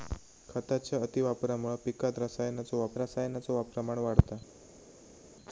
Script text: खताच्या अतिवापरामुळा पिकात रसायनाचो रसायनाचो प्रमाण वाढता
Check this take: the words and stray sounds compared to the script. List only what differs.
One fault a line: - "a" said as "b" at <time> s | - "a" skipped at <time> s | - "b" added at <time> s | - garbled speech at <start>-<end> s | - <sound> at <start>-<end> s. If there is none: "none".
none